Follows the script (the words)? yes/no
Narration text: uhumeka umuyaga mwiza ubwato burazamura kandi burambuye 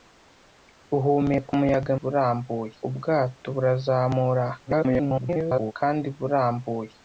no